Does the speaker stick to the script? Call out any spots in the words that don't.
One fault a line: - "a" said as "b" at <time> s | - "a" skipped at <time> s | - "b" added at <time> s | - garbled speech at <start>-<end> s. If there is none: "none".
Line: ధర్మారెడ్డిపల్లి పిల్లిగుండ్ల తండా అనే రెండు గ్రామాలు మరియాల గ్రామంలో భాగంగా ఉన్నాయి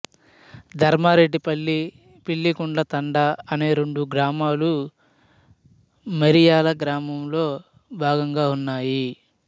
none